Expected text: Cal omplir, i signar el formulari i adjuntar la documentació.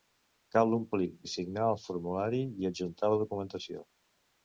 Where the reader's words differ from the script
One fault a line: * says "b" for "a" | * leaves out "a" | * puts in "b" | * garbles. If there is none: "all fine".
all fine